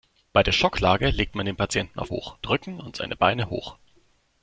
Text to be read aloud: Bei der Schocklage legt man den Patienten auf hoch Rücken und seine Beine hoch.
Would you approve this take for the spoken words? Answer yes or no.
yes